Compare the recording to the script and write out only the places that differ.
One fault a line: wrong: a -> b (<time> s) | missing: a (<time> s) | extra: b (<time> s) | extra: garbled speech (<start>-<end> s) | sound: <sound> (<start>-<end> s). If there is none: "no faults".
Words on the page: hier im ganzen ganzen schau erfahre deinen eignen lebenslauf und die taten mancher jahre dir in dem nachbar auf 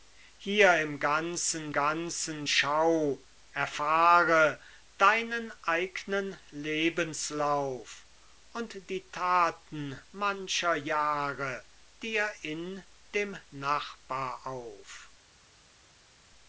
no faults